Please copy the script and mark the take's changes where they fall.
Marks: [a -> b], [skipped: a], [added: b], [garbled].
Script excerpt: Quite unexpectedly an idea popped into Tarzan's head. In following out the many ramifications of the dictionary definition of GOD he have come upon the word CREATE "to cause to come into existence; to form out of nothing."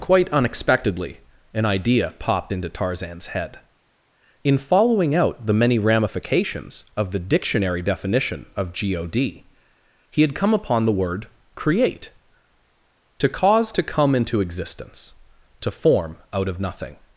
Quite unexpectedly an idea popped into Tarzan's head. In following out the many ramifications of the dictionary definition of GOD he [have -> had] come upon the word CREATE "to cause to come into existence; to form out of nothing."